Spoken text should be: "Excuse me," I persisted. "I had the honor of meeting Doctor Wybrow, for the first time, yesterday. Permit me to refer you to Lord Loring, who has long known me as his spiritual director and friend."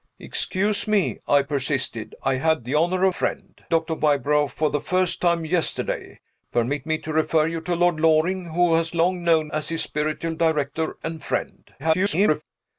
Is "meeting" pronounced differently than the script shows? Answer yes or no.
yes